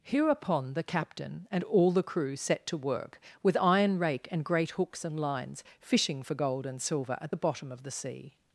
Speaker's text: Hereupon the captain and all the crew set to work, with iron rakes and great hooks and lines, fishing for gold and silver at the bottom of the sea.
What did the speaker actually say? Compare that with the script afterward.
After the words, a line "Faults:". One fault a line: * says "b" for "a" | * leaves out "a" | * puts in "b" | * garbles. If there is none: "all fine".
Hereupon the captain and all the crew set to work, with iron rake and great hooks and lines, fishing for gold and silver at the bottom of the sea.
Faults:
* says "rake" for "rakes"